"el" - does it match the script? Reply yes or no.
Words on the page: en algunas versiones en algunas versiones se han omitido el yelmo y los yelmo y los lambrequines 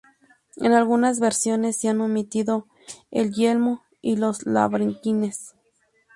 yes